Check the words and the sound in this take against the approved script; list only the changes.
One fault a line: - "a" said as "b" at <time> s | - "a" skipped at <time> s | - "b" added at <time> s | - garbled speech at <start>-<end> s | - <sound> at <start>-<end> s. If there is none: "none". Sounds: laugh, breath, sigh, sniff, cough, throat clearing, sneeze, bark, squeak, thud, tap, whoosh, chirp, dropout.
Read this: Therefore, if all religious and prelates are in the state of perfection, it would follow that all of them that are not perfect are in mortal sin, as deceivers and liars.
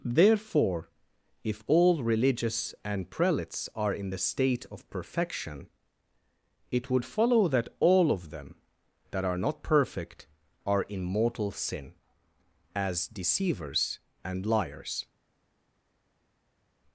none